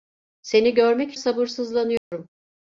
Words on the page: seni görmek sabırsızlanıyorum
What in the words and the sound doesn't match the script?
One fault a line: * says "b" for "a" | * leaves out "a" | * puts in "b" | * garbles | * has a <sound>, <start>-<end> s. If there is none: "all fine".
* has a dropout, 2.0-2.1 s